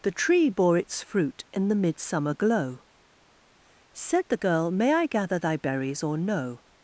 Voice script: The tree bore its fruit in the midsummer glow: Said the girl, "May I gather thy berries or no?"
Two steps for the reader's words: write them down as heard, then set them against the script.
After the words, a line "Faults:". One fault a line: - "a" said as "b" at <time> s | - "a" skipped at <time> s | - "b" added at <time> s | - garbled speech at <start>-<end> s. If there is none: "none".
The tree bore its fruit in the midsummer glow: Said the girl, "May I gather thy berries or no?"
Faults:
none